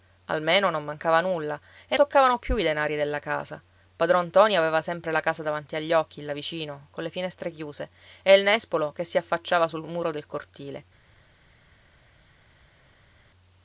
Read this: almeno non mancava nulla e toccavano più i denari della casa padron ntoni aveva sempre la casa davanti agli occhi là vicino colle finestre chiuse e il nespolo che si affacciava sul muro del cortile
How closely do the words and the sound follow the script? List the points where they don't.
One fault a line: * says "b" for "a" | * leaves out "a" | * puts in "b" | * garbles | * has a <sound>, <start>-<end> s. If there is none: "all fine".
all fine